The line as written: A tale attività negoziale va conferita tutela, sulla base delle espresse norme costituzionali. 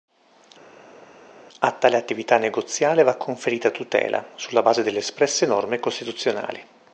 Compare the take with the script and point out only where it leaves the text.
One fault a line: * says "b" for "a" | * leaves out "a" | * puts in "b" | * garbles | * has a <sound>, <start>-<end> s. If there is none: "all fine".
all fine